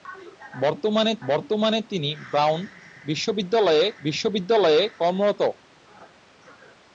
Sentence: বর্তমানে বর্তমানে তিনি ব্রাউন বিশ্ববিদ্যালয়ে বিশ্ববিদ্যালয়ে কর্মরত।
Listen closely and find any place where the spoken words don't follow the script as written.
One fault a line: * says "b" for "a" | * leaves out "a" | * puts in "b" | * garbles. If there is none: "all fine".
all fine